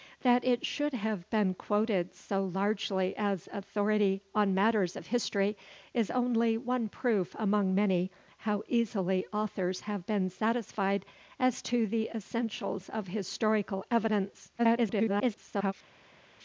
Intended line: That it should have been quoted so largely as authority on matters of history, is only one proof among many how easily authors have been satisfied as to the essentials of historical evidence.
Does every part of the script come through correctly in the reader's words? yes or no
no